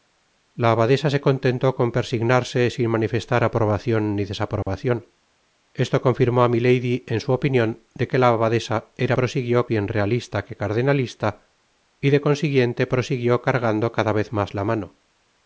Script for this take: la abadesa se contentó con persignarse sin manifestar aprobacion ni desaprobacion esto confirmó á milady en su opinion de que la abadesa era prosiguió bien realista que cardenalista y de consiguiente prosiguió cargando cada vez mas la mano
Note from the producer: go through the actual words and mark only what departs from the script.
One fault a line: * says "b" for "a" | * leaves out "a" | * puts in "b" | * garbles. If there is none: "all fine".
all fine